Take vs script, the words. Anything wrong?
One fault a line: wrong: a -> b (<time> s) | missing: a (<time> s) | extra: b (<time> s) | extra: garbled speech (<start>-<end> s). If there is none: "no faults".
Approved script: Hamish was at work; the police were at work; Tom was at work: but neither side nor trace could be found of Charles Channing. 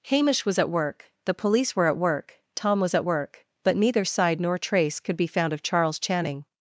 no faults